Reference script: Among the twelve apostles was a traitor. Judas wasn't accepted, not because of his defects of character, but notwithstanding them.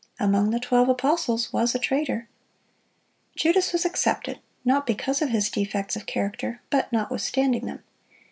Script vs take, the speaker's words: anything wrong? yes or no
yes